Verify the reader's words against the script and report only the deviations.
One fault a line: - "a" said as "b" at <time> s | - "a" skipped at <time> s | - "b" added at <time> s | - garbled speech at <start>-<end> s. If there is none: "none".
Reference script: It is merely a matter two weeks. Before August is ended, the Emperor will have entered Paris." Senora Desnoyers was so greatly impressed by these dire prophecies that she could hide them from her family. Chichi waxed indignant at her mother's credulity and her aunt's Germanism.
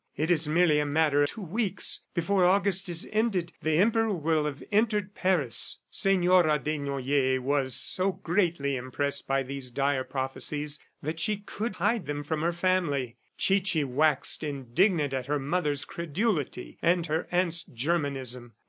none